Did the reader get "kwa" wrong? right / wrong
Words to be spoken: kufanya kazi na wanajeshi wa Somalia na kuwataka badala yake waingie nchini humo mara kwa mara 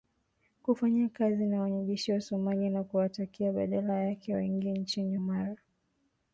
wrong